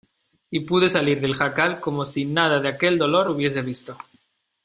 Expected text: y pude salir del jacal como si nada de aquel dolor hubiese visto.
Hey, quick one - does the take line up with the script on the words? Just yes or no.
yes